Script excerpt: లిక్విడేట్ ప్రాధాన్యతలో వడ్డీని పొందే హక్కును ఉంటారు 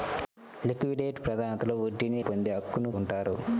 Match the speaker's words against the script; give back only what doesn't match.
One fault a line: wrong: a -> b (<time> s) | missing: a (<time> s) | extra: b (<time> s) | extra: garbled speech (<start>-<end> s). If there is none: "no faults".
no faults